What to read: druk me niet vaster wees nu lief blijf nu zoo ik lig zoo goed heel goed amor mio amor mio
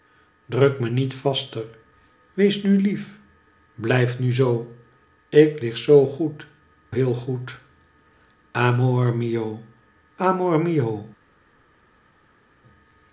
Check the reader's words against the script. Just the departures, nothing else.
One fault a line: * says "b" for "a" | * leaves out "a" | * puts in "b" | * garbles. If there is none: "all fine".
all fine